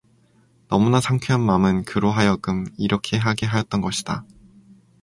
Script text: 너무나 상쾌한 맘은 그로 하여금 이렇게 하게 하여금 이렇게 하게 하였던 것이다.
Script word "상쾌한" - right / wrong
right